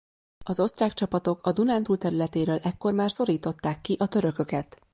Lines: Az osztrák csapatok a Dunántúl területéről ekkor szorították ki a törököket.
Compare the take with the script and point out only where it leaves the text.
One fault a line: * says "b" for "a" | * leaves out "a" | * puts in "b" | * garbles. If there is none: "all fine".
* puts in "már"